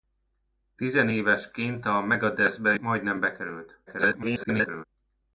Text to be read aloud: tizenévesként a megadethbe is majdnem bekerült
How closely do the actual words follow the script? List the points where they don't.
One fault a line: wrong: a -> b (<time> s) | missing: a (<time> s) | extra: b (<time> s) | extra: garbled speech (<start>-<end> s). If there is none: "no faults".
missing: is (2.8 s)
extra: garbled speech (3.9-4.8 s)